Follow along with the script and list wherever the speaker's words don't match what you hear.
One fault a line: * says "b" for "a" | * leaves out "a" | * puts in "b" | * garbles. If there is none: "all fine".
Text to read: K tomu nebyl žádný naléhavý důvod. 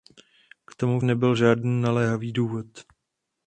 all fine